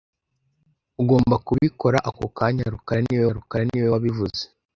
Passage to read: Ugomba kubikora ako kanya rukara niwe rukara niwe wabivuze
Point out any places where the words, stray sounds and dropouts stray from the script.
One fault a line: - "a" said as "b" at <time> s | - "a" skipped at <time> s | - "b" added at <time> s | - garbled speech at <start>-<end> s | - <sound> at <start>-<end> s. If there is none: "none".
none